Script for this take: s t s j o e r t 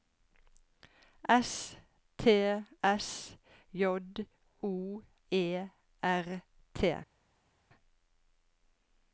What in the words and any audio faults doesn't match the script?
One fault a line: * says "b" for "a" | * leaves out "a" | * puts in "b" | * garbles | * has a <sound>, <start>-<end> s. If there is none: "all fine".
all fine